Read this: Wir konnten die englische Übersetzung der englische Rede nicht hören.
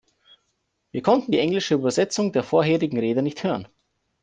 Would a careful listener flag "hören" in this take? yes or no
no